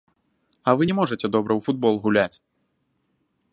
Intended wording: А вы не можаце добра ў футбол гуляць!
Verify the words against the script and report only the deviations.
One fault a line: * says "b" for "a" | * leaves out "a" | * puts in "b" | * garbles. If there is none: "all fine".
all fine